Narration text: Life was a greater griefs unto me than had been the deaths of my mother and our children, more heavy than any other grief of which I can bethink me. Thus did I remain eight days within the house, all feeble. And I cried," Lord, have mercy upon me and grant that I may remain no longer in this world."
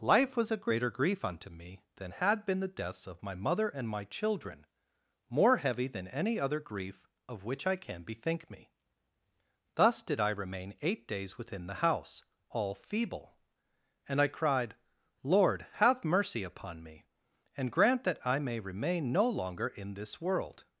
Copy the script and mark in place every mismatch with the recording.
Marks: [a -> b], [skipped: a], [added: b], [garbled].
Life was a greater [griefs -> grief] unto me than had been the deaths of my mother and [our -> my] children, more heavy than any other grief of which I can bethink me. Thus did I remain eight days within the house, all feeble. And I cried," Lord, have mercy upon me and grant that I may remain no longer in this world."